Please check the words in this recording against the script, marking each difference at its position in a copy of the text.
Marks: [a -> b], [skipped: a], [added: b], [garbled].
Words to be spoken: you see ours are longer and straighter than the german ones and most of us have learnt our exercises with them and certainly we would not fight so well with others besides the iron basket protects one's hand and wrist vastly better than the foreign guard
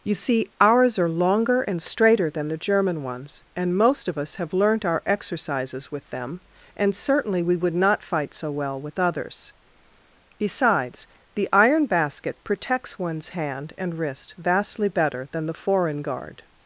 you see ours are longer and straighter than the german ones and most of us have learnt our exercises with them and certainly we would not fight so well with others besides the iron basket protects one's hand and wrist vastly better than the foreign guard